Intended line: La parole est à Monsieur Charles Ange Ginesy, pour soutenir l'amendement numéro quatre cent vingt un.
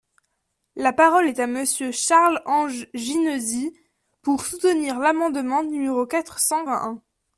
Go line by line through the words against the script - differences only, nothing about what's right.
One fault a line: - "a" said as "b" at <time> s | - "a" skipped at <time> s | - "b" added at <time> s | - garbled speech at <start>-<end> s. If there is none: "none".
none